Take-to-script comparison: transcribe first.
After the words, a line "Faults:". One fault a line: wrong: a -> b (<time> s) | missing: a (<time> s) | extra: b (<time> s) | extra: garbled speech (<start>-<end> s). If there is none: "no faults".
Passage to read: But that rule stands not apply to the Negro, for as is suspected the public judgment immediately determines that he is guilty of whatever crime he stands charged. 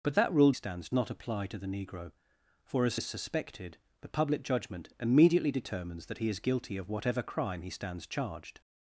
But that rule stands not apply to the Negro, for as is suspected the public judgment immediately determines that he is guilty of whatever crime he stands charged.
Faults:
no faults